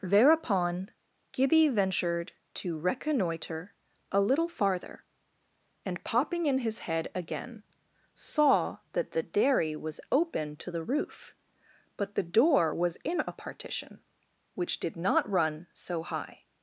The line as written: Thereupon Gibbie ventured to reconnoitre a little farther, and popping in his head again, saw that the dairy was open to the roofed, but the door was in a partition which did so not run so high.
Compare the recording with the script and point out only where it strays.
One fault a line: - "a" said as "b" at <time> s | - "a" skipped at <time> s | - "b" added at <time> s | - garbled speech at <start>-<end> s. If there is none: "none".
- "roofed" said as "roof" at 10.8 s
- "so" skipped at 15.0 s